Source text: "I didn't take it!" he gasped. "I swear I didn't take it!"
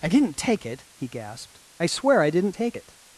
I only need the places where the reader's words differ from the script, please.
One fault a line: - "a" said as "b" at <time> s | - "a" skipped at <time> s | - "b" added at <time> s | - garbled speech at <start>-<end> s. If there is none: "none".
none